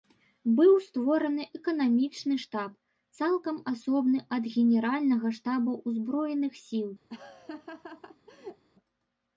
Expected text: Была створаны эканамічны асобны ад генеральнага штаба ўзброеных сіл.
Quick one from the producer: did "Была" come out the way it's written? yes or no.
no